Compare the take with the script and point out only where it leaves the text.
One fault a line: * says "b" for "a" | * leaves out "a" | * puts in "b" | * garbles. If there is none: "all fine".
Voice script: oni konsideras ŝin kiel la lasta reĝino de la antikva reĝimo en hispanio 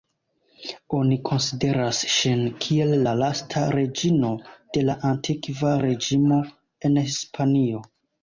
all fine